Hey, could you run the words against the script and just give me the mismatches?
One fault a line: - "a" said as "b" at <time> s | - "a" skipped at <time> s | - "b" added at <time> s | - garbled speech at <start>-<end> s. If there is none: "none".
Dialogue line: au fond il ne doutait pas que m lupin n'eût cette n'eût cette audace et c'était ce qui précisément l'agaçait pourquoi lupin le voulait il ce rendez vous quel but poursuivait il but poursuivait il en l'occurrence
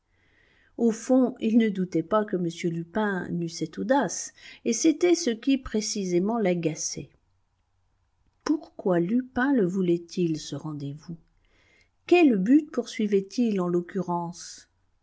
- "n'eût cette" skipped at 3.8 s
- "but poursuivait il" skipped at 13.6 s